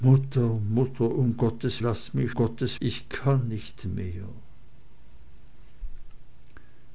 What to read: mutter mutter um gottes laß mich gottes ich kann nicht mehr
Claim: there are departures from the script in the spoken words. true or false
false